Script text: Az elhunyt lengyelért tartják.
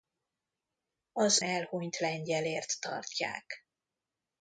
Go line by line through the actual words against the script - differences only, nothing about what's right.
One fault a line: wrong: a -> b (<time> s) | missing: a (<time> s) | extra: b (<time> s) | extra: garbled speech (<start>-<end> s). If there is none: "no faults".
no faults